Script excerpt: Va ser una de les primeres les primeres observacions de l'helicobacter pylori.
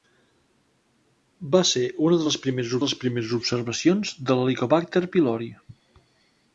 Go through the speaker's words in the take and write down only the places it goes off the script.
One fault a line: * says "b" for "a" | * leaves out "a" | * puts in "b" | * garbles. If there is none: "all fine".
all fine